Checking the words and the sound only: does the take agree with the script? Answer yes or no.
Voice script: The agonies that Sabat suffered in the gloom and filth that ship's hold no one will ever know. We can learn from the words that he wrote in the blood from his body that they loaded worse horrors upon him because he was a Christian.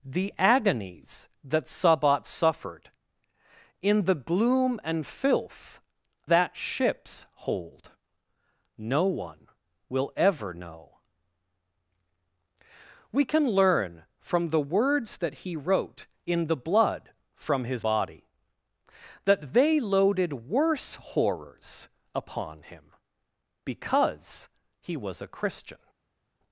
yes